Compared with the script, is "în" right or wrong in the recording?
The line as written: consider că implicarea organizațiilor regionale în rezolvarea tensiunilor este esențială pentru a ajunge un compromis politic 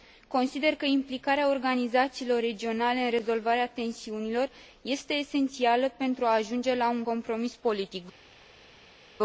right